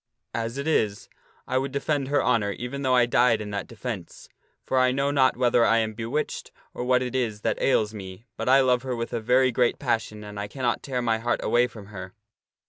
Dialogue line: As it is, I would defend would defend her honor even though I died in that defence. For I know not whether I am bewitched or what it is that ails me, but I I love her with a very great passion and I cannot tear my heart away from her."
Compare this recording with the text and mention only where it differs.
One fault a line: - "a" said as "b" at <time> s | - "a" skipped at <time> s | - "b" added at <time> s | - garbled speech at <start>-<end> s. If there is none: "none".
- "would defend" skipped at 2.1 s
- "I" skipped at 8.6 s